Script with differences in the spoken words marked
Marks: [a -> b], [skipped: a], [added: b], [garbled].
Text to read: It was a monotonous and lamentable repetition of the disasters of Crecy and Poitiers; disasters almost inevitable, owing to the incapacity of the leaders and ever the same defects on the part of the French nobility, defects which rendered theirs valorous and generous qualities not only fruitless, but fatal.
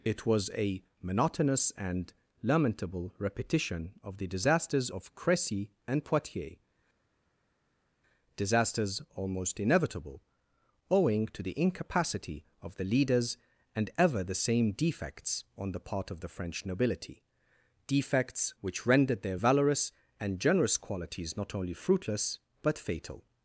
It was a monotonous and lamentable repetition of the disasters of Crecy and Poitiers; disasters almost inevitable, owing to the incapacity of the leaders and ever the same defects on the part of the French nobility, defects which rendered [theirs -> their] valorous and generous qualities not only fruitless, but fatal.